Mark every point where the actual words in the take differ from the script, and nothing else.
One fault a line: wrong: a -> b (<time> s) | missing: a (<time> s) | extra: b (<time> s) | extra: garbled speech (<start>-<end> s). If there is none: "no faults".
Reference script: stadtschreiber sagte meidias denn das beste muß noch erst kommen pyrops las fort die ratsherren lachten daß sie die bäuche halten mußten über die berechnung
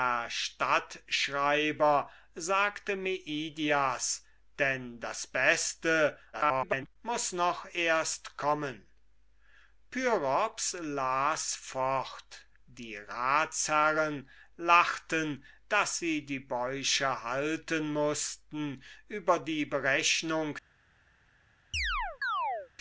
extra: garbled speech (6.3-7.0 s)